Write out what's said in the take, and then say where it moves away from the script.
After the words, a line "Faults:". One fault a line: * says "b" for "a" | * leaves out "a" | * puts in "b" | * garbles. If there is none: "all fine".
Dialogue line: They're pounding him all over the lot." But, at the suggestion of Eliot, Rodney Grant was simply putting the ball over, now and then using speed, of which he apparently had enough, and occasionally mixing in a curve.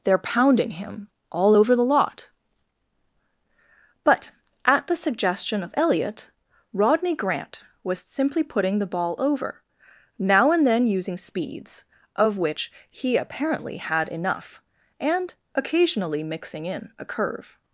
They're pounding him all over the lot." But, at the suggestion of Eliot, Rodney Grant was simply putting the ball over, now and then using speeds, of which he apparently had enough, and occasionally mixing in a curve.
Faults:
* says "speeds" for "speed"